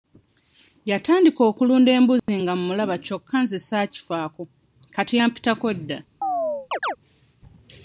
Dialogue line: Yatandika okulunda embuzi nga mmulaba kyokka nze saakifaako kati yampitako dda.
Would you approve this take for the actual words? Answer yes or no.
yes